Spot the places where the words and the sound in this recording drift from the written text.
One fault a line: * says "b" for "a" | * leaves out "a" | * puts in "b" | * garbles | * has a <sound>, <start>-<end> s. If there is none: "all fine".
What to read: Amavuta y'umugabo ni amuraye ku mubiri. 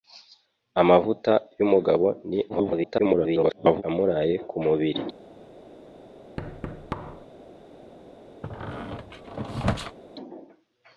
* garbles
* has a thud, 6.4-7.3 s
* has a squeak, 8.4-10.0 s